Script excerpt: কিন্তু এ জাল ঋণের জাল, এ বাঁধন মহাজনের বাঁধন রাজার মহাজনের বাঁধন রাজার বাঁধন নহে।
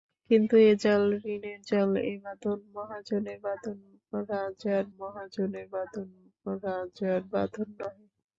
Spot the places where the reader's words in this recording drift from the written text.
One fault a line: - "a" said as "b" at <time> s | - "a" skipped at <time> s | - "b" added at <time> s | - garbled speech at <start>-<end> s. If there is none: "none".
none